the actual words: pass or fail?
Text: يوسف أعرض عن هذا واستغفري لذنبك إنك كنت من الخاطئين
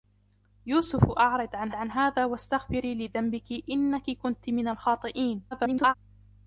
fail